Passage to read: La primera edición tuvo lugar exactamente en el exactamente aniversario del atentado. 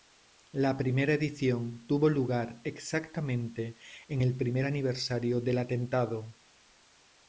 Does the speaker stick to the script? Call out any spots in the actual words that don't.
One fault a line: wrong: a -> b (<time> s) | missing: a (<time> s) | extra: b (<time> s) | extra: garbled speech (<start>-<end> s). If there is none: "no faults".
wrong: exactamente -> primer (4.3 s)